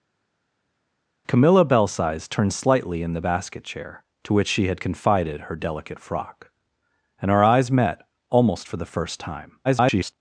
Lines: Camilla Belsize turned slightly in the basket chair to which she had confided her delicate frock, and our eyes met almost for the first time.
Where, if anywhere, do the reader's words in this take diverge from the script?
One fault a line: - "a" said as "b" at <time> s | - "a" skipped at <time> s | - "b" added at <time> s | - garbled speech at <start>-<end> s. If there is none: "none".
- garbled speech at 9.6-10.1 s